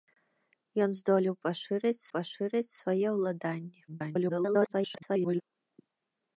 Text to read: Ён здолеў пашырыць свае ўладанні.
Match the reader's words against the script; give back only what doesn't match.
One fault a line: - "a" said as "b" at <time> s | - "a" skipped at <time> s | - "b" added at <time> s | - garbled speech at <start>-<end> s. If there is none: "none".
- "пашырыць" added at 2.2 s
- garbled speech at 3.9-5.4 s